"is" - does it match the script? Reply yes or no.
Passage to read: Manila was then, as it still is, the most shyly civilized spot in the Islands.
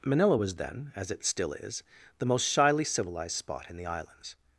yes